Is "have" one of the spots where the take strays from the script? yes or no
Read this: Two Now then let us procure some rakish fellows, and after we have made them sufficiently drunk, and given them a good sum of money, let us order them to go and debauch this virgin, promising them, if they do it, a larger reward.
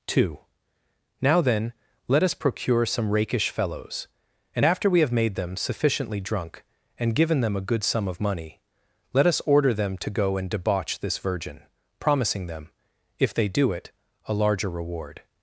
no